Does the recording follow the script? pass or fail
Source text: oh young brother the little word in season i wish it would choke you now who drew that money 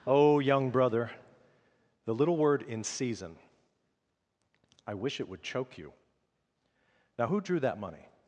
pass